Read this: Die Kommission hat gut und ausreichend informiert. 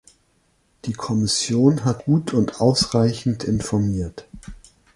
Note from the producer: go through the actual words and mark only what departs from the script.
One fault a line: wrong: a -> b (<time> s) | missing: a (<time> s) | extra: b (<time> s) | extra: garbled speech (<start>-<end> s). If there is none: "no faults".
no faults